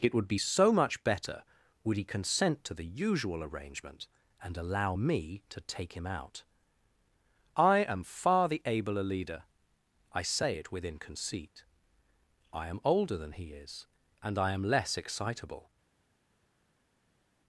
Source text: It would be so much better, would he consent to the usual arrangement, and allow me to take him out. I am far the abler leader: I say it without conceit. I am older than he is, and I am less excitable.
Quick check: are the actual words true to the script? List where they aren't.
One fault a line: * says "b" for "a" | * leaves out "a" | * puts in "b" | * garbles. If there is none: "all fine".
* says "within" for "without"